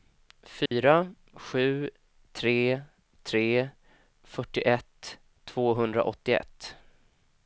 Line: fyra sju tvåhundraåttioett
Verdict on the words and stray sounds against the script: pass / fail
fail